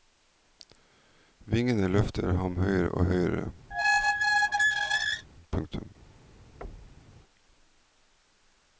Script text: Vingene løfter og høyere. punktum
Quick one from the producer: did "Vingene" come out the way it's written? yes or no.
yes